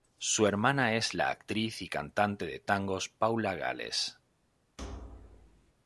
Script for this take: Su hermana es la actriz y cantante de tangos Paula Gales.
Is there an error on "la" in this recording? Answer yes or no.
no